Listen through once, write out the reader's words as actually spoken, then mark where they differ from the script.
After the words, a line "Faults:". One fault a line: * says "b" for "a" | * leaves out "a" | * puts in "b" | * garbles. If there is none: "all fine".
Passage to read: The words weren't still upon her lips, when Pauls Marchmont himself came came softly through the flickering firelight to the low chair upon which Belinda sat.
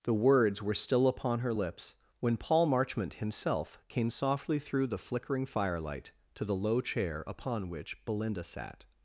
The words were still upon her lips, when Paul Marchmont himself came softly through the flickering firelight to the low chair upon which Belinda sat.
Faults:
* says "were" for "weren't"
* says "Paul" for "Pauls"
* leaves out "came"